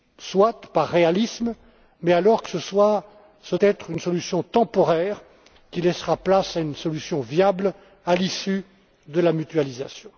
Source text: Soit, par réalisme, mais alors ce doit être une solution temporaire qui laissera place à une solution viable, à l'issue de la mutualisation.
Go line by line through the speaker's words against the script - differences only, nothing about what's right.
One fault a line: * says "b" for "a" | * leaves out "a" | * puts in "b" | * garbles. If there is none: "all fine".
* leaves out "doit"